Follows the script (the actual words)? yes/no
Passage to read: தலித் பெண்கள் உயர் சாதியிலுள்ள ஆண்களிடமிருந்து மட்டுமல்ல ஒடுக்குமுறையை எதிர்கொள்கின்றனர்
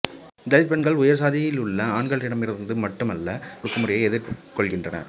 yes